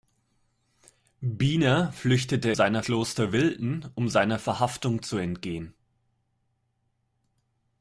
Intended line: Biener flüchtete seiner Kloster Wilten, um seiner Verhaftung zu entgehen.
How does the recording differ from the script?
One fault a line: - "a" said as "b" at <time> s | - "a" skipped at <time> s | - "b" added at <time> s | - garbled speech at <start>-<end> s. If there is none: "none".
none